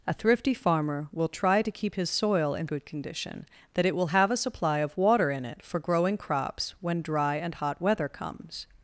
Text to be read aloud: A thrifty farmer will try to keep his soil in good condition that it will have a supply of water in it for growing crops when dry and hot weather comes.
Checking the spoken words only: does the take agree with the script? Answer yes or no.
yes